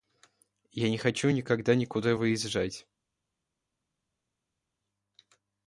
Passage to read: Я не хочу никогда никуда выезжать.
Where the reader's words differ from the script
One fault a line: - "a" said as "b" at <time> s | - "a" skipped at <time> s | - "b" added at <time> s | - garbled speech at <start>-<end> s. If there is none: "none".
none